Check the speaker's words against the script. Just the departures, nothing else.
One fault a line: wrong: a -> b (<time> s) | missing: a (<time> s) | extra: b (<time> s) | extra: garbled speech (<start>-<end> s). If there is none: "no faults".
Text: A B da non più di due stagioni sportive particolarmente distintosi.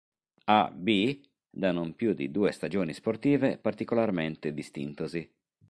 no faults